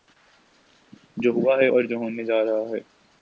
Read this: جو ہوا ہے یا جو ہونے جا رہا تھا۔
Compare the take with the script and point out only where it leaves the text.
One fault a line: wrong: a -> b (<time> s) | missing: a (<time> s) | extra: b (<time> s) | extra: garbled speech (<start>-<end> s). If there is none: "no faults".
wrong: یا -> اور (1.6 s)
wrong: تھا -> ہے (2.7 s)